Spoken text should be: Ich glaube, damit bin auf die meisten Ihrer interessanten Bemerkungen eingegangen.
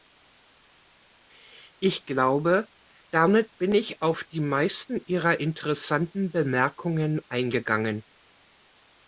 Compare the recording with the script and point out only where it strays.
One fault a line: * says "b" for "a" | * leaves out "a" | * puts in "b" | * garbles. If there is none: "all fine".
* puts in "ich"